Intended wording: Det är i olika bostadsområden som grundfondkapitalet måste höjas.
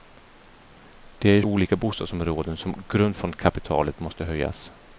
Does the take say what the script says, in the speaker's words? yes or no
yes